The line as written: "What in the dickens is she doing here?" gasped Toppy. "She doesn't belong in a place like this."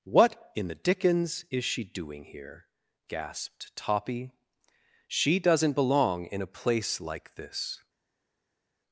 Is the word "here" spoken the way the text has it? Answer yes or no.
yes